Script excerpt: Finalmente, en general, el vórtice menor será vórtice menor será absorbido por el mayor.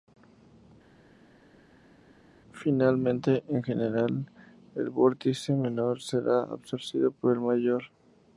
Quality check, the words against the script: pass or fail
fail